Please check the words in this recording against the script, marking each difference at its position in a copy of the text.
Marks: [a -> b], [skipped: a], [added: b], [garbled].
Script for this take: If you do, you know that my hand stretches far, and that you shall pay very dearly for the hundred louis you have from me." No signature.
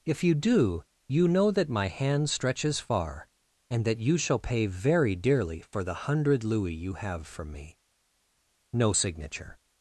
If you do, you know that my hand stretches far, and that you shall pay very dearly for the hundred louis you have from me." No signature.